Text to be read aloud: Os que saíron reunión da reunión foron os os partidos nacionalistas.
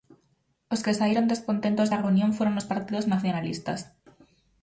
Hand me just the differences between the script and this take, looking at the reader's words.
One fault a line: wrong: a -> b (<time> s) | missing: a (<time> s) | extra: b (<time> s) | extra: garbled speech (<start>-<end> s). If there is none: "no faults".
wrong: reunión -> descontentos (1.3 s)
missing: os (2.7 s)